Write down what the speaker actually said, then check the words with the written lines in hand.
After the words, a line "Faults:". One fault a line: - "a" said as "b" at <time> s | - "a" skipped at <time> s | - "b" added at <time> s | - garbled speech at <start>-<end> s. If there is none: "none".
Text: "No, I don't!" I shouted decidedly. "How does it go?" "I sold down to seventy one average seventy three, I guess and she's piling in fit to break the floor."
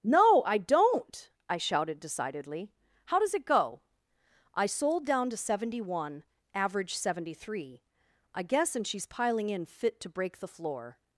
"No, I don't!" I shouted decidedly. "How does it go?" "I sold down to seventy one average seventy three, I guess and she's piling in fit to break the floor."
Faults:
none